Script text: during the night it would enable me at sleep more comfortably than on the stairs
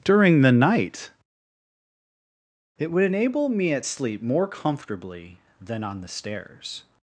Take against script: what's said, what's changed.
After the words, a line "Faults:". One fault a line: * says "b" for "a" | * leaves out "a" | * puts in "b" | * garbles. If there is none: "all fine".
during the night it would enable me at sleep more comfortably than on the stairs
Faults:
all fine